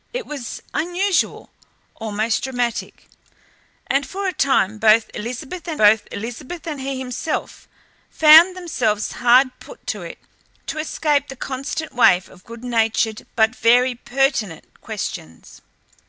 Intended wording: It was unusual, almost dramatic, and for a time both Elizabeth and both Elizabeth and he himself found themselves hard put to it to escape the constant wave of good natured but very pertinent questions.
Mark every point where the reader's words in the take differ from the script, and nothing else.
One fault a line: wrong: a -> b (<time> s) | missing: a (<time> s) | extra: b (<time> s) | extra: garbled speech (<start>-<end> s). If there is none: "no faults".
no faults